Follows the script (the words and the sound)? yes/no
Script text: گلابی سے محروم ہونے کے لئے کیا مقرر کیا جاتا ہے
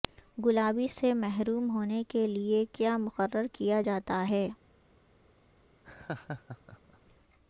no